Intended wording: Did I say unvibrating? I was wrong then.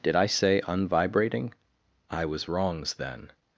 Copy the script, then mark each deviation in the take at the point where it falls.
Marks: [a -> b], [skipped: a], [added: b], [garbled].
Did I say unvibrating? I was [wrong -> wrongs] then.